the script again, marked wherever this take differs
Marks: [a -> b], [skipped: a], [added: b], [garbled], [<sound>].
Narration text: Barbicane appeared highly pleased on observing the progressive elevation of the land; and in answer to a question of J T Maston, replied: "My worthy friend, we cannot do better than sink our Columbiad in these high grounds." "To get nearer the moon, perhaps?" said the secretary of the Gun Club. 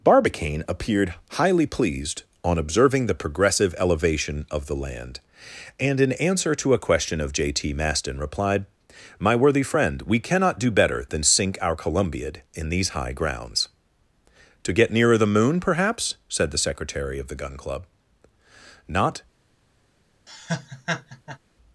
Barbicane appeared highly pleased on observing the progressive elevation of the land; and in answer to a question of J T Maston, replied: "My worthy friend, we cannot do better than sink our Columbiad in these high grounds." "To get nearer the moon, perhaps?" said the secretary of the Gun Club. [added: Not] [laugh]